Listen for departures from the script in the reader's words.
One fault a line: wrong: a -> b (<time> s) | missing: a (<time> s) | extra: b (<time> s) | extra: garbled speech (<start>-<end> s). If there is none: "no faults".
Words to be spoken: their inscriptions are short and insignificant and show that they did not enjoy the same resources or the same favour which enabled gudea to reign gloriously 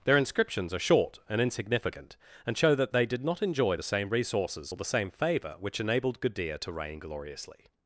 no faults